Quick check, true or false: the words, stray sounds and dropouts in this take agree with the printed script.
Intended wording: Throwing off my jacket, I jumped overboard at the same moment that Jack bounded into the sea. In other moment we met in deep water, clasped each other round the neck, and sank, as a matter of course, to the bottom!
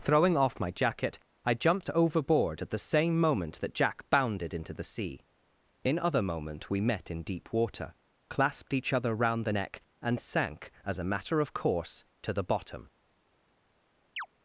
false